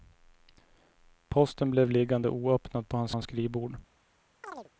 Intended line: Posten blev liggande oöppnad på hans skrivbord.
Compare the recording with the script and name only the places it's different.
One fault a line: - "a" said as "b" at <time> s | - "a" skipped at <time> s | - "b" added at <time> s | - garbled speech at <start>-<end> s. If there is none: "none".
- "hans" added at 3.1 s